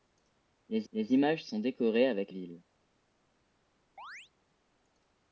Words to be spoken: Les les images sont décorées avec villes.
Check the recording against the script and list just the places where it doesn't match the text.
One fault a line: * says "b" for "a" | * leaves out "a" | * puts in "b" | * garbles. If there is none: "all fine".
all fine